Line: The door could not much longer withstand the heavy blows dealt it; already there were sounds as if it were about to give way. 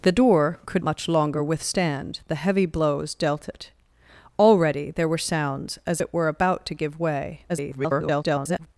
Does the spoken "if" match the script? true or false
false